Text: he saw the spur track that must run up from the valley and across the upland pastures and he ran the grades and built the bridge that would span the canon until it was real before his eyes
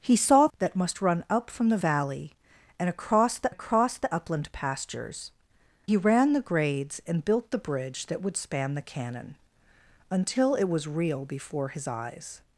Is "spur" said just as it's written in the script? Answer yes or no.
no